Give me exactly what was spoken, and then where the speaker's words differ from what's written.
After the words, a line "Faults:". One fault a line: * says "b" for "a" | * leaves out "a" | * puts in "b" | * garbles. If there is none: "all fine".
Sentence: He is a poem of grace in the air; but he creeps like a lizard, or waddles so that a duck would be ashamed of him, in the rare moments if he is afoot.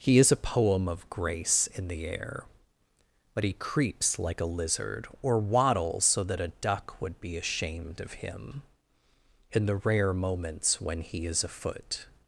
He is a poem of grace in the air; but he creeps like a lizard, or waddles so that a duck would be ashamed of him, in the rare moments when he is afoot.
Faults:
* says "when" for "if"